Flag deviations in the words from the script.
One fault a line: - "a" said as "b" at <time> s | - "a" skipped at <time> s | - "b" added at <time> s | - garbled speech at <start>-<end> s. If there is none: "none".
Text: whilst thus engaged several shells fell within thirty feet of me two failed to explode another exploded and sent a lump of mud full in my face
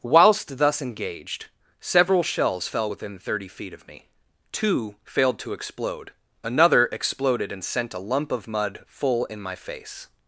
none